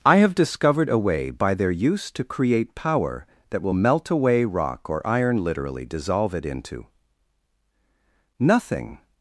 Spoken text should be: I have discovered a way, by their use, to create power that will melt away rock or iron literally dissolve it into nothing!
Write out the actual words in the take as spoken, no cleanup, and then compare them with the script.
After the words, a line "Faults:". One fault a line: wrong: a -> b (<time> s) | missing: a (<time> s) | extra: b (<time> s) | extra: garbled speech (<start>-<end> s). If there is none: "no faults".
I have discovered a way, by their use, to create power that will melt away rock or iron literally dissolve it into nothing!
Faults:
no faults